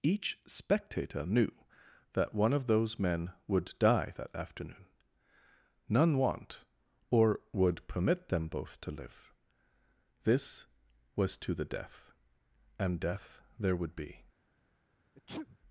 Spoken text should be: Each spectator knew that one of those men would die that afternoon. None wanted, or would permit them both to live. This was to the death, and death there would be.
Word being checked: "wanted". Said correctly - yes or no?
no